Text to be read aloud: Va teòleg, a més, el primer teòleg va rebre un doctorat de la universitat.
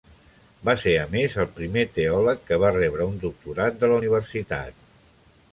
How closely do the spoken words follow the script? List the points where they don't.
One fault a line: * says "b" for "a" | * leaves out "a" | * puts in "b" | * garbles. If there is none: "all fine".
* says "ser" for "teòleg"
* puts in "que"